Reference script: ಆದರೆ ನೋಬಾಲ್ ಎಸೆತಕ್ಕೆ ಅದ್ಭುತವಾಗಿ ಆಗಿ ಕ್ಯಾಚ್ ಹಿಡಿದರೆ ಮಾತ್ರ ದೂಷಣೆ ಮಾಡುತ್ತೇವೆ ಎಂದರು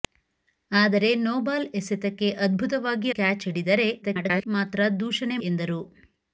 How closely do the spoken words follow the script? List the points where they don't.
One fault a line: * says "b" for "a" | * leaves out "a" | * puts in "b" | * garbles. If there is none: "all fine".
* leaves out "ಆಗಿ"
* garbles
* leaves out "ಮಾಡುತ್ತೇವೆ"